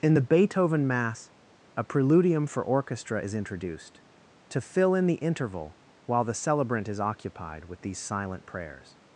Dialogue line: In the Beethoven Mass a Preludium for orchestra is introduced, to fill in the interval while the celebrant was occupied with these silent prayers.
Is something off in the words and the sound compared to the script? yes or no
yes